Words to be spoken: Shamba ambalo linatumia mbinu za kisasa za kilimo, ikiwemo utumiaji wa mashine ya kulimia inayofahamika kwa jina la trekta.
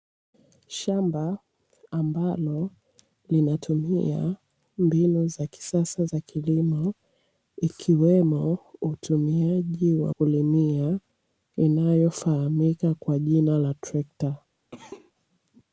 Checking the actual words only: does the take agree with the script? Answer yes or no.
no